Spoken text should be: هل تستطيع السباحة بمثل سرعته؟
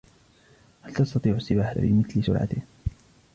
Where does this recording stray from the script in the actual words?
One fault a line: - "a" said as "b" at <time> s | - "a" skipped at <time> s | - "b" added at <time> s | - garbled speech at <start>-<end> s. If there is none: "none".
none